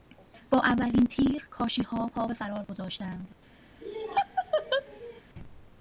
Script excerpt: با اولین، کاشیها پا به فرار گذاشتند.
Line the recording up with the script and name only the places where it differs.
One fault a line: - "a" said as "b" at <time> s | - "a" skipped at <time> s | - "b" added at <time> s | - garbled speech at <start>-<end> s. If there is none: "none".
- "تیر" added at 1.1 s